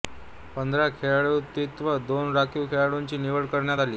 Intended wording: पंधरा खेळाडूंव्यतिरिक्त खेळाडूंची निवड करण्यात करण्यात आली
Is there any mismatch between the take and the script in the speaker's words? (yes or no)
yes